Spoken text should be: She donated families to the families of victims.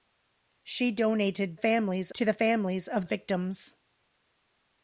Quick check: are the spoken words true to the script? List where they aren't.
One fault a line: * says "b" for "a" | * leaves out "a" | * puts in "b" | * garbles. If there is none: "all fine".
all fine